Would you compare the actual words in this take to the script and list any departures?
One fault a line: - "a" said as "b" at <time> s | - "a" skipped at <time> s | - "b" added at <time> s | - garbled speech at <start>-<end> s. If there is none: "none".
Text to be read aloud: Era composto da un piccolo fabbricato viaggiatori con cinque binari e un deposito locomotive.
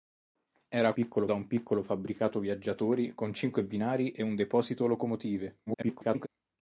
- "composto" said as "piccolo" at 0.9 s
- garbled speech at 5.7-6.3 s